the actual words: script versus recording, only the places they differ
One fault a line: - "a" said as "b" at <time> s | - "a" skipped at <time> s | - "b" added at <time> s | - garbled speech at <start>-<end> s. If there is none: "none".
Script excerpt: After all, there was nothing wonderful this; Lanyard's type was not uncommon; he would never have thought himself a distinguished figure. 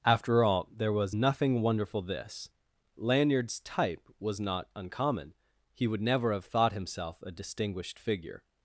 none